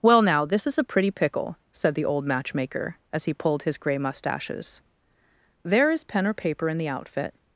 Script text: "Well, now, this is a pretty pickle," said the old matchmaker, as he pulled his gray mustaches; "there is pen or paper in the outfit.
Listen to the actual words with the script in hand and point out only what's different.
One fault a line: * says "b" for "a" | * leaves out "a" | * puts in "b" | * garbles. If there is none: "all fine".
all fine